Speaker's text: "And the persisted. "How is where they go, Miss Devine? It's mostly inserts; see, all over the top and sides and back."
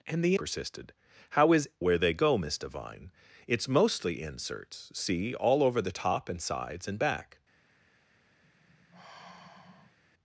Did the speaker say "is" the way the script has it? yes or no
yes